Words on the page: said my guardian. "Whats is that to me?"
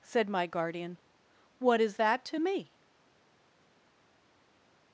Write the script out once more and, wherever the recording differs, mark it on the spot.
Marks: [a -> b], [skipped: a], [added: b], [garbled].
said my guardian. ["Whats -> What] is that to me?"